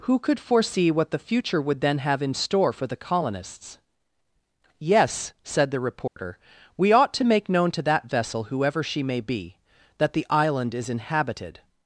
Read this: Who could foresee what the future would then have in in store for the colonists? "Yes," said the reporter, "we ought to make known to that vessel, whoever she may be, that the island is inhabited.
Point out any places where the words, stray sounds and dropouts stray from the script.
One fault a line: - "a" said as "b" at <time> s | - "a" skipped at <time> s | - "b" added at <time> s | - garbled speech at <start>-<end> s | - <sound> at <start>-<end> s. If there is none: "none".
- "in" skipped at 2.3 s
- dropout at 6.1-6.2 s